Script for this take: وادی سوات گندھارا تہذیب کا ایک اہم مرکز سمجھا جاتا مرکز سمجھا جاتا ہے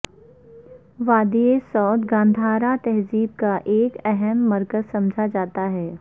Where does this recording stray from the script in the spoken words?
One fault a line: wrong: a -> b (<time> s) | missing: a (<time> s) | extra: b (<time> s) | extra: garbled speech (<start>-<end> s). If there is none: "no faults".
missing: مرکز سمجھا جاتا (5.7 s)